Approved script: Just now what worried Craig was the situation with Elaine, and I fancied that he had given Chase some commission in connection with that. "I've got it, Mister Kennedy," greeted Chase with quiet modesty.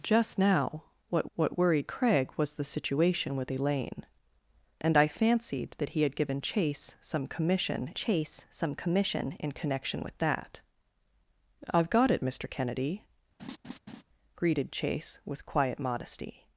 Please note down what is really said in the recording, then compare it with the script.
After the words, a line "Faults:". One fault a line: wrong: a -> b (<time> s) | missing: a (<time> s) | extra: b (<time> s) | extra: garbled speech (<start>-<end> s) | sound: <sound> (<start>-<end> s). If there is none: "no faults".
Just now what what worried Craig was the situation with Elaine, and I fancied that he had given Chase some commission Chase some commission in connection with that. "I've got it, Mister Kennedy," greeted Chase with quiet modesty.
Faults:
extra: what (1.3 s)
extra: Chase some commission (7.9 s)
sound: laugh (13.4-14.0 s)